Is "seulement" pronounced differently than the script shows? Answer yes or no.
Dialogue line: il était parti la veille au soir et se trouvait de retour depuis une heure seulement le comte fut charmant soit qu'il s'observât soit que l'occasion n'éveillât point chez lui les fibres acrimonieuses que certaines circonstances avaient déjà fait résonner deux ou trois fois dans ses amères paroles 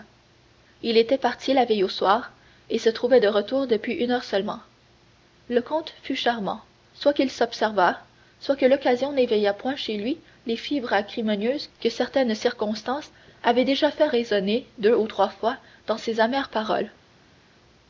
no